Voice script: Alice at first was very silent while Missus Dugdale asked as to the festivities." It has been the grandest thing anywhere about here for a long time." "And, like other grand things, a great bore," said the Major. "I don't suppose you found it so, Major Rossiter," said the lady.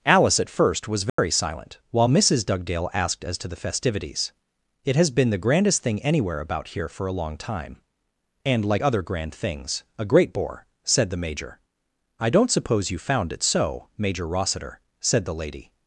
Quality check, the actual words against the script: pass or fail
pass